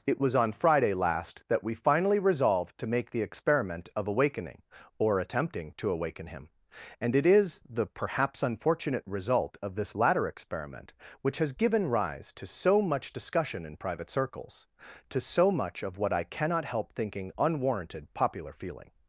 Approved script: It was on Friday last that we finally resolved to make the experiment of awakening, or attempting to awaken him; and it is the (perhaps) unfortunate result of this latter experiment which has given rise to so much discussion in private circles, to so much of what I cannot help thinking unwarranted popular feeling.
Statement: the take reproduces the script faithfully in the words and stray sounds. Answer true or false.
true